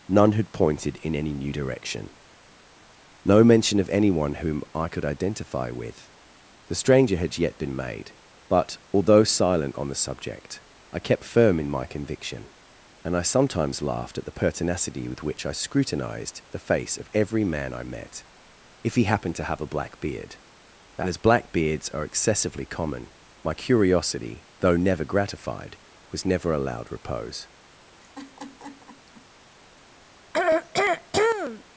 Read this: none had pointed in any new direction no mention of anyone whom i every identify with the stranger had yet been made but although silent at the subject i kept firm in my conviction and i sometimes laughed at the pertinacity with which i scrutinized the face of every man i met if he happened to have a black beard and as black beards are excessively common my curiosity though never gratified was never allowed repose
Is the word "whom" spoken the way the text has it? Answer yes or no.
yes